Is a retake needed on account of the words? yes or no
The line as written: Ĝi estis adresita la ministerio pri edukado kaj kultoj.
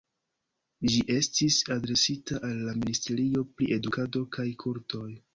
yes